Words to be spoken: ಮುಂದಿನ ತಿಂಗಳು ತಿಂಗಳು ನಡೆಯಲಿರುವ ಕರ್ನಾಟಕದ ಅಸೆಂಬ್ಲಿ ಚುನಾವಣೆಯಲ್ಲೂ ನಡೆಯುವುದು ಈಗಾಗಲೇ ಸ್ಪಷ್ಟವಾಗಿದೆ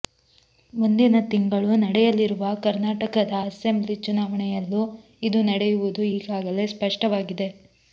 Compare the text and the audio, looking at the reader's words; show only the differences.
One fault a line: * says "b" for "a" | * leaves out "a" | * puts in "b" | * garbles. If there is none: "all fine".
* leaves out "ತಿಂಗಳು"
* puts in "ಇದು"